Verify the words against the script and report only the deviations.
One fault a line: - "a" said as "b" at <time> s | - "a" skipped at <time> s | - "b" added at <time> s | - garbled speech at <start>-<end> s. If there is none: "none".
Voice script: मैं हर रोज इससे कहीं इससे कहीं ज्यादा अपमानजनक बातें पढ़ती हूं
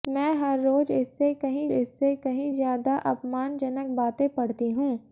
none